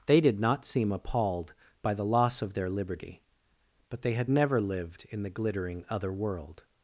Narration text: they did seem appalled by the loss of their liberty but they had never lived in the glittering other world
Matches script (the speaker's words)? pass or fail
fail